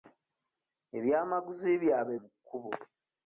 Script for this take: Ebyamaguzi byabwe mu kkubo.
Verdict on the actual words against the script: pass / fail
pass